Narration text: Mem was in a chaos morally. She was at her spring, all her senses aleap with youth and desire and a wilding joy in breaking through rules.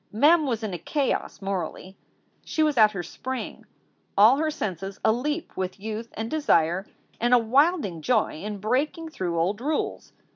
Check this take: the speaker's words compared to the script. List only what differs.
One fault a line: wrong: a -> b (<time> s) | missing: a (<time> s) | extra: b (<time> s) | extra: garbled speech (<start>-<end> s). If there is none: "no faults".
extra: old (9.4 s)